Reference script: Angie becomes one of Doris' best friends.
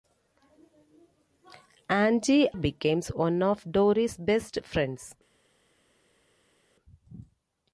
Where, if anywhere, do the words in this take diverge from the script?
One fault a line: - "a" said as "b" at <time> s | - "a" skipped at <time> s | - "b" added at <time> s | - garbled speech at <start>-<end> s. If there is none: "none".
none